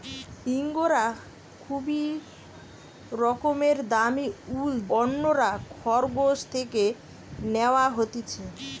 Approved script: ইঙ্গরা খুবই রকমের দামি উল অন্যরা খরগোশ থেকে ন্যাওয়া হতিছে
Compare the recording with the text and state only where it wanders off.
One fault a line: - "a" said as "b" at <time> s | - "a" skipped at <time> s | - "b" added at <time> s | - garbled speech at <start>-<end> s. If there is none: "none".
none